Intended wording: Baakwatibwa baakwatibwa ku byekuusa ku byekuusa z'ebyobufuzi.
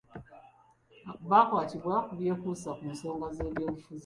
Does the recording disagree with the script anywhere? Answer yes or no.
yes